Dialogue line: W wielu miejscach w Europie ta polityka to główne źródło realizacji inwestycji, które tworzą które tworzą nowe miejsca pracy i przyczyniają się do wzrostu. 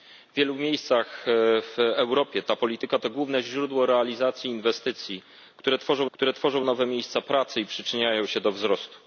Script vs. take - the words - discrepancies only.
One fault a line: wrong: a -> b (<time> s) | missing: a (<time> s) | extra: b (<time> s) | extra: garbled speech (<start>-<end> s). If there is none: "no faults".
no faults